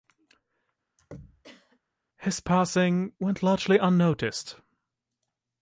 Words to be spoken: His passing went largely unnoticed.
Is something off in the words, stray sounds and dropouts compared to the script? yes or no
yes